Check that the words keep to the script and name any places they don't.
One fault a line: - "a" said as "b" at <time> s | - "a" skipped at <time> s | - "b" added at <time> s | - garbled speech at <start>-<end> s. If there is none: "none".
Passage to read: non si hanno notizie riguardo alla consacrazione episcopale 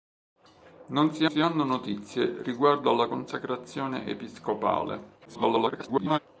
- "si" added at 1.3 s
- garbled speech at 5.3-6.2 s